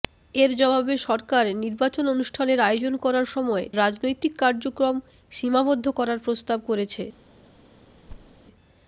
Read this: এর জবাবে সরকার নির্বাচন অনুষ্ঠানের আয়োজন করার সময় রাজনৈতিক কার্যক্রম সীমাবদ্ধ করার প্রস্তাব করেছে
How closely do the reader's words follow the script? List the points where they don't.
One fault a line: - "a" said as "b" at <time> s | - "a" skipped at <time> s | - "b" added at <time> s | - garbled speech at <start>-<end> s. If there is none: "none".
none